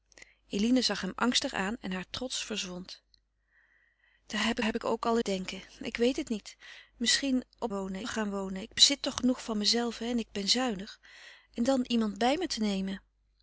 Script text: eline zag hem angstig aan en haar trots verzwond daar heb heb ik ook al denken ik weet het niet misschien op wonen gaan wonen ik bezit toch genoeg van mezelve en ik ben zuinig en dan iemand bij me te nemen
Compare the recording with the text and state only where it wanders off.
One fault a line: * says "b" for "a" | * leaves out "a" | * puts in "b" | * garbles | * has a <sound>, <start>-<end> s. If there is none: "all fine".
all fine